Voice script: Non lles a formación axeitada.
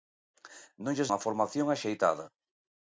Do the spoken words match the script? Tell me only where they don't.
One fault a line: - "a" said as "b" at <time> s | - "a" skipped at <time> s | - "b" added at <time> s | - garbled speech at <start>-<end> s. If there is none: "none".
none